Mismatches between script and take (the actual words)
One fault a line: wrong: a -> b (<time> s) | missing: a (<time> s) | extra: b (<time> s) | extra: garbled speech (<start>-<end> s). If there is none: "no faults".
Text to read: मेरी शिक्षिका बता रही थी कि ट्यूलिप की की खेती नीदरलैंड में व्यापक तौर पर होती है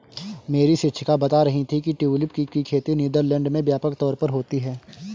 no faults